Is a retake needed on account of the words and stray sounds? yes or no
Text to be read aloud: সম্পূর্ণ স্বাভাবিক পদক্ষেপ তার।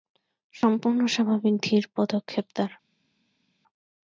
yes